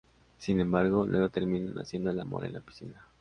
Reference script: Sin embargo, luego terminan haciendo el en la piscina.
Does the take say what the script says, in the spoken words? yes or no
no